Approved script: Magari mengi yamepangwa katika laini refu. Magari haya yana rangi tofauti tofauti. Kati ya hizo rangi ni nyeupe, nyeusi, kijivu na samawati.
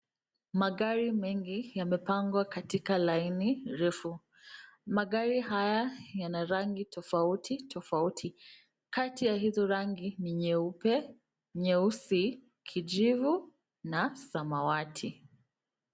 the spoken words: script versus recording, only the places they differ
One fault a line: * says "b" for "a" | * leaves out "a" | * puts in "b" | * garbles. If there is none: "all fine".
all fine